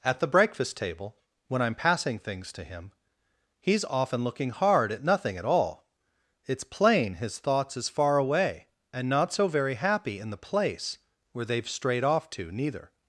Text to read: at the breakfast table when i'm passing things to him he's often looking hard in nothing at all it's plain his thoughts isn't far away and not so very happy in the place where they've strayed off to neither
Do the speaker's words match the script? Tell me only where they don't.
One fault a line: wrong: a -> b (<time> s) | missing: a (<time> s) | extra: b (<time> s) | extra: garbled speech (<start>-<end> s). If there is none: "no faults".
wrong: in -> at (4.9 s)
wrong: isn't -> is (7.8 s)